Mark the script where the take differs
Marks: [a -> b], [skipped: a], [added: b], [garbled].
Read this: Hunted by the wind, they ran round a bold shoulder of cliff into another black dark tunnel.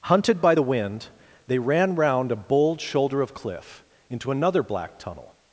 Hunted by the wind, they ran round a bold shoulder of cliff into another black [skipped: dark] tunnel.